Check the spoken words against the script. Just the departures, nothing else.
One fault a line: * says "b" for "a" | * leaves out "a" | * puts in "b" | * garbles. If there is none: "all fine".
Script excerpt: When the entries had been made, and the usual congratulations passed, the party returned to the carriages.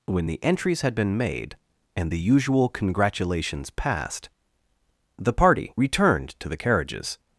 all fine